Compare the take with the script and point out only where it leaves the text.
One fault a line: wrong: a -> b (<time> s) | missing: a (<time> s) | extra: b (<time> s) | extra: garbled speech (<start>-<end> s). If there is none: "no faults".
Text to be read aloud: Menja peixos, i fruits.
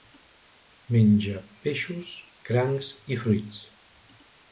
extra: crancs (2.5 s)